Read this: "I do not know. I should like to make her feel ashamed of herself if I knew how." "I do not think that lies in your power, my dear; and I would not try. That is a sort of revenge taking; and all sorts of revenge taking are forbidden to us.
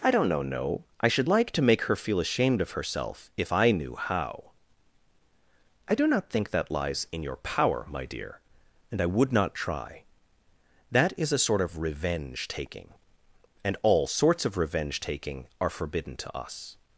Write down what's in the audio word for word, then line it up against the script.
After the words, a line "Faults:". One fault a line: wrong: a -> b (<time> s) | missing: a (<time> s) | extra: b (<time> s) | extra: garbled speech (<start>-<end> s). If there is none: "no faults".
"I don't know no. I should like to make her feel ashamed of herself if I knew how." "I do not think that lies in your power, my dear; and I would not try. That is a sort of revenge taking; and all sorts of revenge taking are forbidden to us.
Faults:
wrong: do not know -> don't know no (0.1 s)